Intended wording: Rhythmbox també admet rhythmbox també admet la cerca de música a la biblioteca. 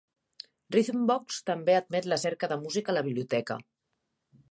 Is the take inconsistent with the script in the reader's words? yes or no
yes